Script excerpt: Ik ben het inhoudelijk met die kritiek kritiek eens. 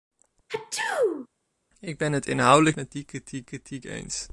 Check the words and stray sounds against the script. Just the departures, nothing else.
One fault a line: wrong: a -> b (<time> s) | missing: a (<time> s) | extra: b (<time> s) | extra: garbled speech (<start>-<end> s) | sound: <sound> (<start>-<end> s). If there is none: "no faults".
sound: sneeze (0.5-1.3 s)